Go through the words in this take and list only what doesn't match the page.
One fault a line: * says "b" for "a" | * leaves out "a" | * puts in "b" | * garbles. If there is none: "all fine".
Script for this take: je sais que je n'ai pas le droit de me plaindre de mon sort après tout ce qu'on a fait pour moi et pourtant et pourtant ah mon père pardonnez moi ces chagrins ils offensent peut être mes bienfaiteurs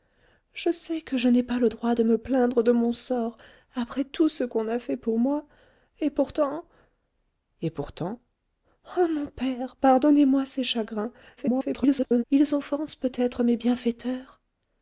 * garbles